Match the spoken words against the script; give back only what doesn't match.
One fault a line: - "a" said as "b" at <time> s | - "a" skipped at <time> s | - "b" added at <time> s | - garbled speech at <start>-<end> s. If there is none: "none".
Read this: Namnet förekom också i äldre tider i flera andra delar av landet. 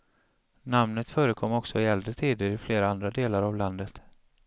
none